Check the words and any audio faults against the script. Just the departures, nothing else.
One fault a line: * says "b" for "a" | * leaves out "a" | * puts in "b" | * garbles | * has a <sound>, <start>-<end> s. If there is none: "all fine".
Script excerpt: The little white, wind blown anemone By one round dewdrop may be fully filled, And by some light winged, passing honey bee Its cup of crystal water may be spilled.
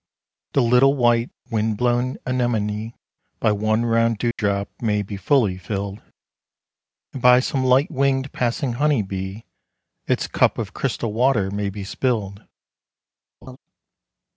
* has a dropout, 4.3-4.4 s
* has a laugh, 13.4-13.6 s